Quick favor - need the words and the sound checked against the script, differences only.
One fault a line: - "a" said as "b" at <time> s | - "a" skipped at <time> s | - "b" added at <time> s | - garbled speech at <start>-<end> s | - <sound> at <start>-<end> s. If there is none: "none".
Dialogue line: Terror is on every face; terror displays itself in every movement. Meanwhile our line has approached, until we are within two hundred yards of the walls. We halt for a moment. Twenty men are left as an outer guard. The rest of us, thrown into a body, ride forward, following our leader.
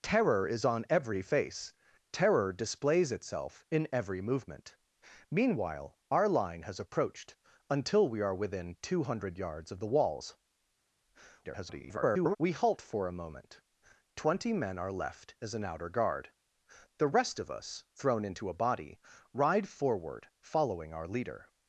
- garbled speech at 11.4-12.4 s